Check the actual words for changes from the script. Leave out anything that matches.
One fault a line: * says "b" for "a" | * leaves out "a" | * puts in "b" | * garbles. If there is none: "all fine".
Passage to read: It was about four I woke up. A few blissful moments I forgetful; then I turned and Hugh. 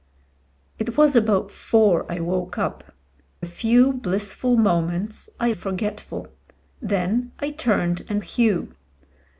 all fine